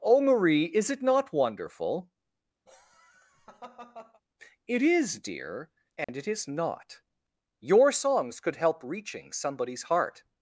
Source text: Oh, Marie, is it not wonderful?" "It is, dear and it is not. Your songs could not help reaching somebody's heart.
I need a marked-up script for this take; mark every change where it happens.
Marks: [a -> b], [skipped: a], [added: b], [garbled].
Oh, Marie, is it not wonderful?" "It is, dear and it is not. Your songs could [skipped: not] help reaching somebody's heart.